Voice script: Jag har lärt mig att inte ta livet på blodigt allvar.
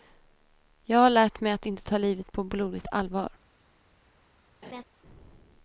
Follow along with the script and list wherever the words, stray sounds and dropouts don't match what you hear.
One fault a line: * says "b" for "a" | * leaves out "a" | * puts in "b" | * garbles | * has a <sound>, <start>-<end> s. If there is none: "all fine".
* has a laugh, 4.6-4.8 s